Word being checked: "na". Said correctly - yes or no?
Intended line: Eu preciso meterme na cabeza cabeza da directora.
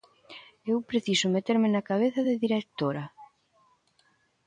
yes